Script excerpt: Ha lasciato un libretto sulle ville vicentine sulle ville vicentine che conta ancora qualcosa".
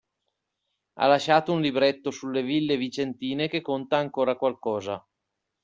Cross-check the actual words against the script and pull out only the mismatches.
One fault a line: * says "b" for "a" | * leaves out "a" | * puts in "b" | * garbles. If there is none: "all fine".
* leaves out "sulle ville vicentine"